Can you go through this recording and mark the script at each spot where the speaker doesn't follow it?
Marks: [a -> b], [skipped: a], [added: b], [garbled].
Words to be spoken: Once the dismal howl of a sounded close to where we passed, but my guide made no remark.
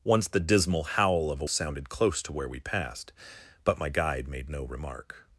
Once the dismal howl of a sounded close to where we passed, but my guide made no remark.